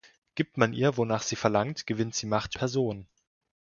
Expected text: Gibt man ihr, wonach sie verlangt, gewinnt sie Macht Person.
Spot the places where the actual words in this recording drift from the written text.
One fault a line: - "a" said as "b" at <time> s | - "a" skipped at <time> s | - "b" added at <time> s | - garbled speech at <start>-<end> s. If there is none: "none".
none